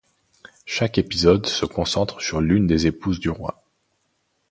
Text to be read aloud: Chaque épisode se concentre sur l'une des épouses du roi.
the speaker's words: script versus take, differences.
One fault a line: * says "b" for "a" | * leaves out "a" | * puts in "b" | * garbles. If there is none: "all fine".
all fine